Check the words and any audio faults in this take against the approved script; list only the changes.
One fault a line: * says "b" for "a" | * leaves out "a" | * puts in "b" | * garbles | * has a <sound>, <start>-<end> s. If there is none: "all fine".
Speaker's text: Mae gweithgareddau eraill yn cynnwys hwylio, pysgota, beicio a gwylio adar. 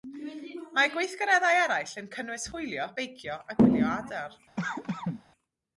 * leaves out "pysgota"
* has a cough, 4.6-5.2 s